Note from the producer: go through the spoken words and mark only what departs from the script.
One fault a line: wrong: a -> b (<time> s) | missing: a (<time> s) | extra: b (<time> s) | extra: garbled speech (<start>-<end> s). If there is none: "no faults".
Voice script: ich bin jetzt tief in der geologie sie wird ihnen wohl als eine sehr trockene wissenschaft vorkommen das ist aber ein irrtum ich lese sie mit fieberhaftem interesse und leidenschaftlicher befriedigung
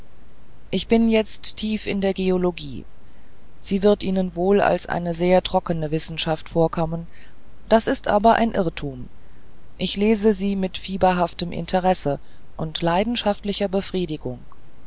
no faults